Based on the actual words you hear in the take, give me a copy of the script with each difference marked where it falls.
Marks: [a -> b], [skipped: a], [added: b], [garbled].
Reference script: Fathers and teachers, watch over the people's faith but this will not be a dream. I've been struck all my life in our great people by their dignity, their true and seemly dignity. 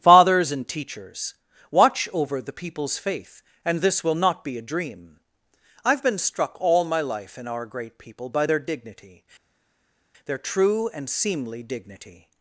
Fathers and teachers, watch over the people's faith [but -> and] this will not be a dream. I've been struck all my life in our great people by their dignity, their true and seemly dignity.